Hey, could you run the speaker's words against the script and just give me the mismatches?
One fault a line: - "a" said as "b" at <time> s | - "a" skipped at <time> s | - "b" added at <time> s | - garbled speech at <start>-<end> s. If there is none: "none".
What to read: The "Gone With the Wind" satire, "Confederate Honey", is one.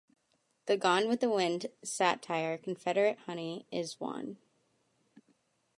none